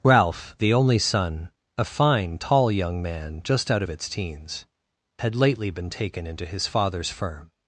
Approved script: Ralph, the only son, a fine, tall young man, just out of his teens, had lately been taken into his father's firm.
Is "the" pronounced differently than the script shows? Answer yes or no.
no